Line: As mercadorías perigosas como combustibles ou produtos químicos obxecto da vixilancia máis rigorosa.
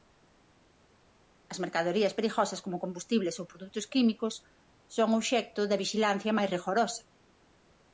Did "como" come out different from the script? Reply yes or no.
no